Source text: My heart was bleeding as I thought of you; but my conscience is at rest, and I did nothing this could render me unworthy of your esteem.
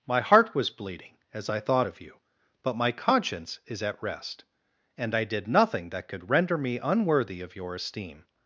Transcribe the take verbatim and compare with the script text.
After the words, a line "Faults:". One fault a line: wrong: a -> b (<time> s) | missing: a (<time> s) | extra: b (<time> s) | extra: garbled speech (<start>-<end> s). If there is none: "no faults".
My heart was bleeding as I thought of you; but my conscience is at rest, and I did nothing that could render me unworthy of your esteem.
Faults:
wrong: this -> that (5.9 s)